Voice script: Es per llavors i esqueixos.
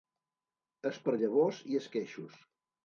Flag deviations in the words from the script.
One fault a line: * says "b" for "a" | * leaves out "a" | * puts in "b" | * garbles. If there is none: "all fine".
all fine